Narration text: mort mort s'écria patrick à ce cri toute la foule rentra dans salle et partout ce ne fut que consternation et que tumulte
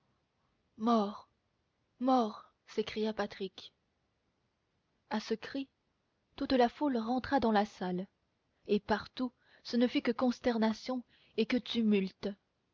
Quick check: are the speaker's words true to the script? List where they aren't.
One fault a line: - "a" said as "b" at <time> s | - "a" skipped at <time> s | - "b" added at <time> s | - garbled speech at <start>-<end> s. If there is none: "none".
- "la" added at 7.5 s